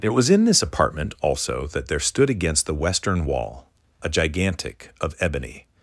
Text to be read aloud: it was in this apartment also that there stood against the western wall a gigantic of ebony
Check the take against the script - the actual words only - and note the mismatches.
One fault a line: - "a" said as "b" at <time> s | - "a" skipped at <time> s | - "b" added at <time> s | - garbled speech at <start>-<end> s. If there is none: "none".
none